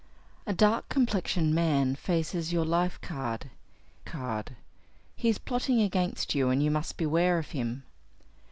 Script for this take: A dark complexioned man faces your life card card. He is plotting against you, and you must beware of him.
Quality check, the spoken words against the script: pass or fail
pass